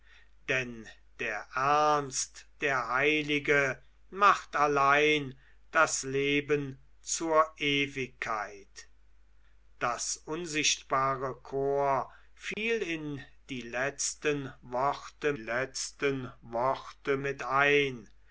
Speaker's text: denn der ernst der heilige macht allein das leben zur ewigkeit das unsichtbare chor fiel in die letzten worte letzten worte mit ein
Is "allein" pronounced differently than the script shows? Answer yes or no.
no